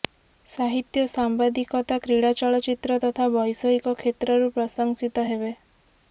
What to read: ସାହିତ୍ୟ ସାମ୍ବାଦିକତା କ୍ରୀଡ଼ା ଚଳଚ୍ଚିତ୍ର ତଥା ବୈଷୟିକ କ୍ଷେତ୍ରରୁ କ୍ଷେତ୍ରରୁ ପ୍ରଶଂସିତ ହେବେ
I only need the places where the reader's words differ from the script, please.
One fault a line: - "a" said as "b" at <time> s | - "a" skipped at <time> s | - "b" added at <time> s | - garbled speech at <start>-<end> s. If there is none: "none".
- "କ୍ଷେତ୍ରରୁ" skipped at 4.5 s